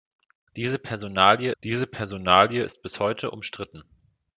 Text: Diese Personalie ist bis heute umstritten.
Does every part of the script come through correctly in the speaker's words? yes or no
no